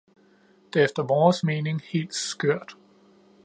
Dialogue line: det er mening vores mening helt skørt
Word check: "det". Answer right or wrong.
right